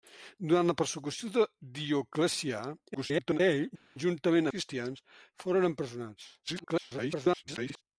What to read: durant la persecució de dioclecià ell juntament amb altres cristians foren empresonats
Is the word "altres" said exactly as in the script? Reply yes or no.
no